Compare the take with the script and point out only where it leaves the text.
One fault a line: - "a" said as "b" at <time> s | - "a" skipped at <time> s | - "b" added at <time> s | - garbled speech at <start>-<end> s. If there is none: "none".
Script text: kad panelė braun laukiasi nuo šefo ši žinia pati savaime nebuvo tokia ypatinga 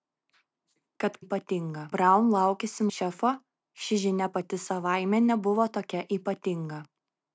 - "panelė" said as "ypatinga" at 1.2 s
- "nuo" skipped at 2.9 s